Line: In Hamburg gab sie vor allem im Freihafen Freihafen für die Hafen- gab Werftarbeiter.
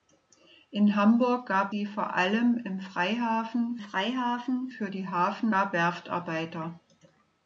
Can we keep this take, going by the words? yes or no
yes